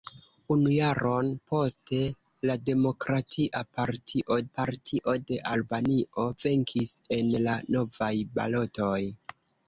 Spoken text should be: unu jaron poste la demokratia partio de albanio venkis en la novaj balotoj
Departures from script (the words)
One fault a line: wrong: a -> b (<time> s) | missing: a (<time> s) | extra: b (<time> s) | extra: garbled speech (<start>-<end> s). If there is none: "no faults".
extra: partio (4.6 s)